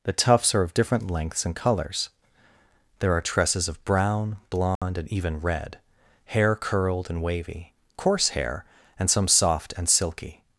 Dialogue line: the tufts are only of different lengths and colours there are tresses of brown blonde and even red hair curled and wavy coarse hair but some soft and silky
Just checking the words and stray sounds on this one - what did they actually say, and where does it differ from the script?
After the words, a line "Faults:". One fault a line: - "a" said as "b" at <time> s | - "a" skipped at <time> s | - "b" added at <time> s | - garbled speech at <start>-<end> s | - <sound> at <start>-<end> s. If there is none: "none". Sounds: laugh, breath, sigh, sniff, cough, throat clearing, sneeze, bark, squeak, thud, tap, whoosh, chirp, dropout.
the tufts are of different lengths and colours there are tresses of brown blonde and even red hair curled and wavy coarse hair and some soft and silky
Faults:
- "only" skipped at 0.6 s
- dropout at 4.8-4.8 s
- "but" said as "and" at 9.0 s